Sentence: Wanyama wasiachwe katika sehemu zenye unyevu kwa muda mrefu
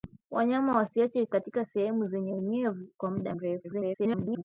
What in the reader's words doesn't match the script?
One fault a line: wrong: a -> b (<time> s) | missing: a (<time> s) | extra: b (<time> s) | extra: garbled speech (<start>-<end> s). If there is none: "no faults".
extra: garbled speech (3.6-4.4 s)